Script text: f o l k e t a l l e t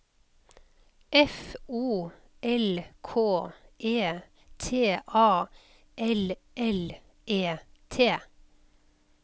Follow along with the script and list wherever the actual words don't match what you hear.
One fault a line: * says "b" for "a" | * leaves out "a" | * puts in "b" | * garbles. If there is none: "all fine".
all fine